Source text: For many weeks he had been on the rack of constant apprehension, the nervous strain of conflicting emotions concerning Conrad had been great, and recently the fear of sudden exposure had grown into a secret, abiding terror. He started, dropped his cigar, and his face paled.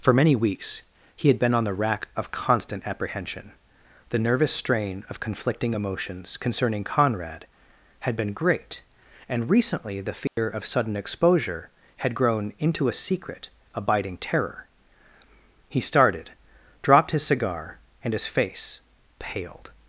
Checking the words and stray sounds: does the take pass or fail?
fail